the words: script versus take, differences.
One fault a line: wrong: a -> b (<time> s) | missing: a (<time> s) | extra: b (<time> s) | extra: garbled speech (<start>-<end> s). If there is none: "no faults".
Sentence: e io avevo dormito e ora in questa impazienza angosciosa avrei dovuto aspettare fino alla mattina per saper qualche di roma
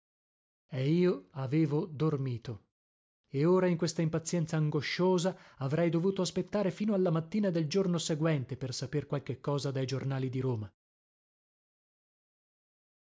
extra: del giorno seguente (7.5 s)
extra: cosa dai giornali (9.4 s)